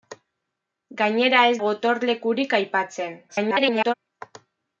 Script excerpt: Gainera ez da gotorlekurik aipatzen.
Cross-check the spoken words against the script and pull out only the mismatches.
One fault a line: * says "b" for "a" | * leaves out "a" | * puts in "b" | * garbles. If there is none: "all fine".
* leaves out "da"
* garbles